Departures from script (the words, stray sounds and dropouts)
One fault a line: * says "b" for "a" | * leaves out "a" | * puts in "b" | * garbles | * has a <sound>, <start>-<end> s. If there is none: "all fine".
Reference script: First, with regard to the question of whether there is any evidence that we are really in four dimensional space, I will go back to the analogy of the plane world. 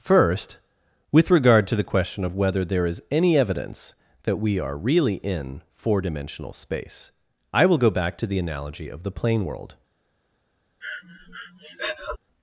* has a breath, 10.8-12.2 s